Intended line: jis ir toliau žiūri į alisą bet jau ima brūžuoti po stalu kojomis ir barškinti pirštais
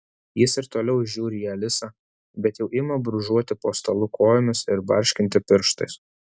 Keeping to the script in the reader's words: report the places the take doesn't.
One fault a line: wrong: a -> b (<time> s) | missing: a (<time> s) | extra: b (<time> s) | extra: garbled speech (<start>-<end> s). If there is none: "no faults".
no faults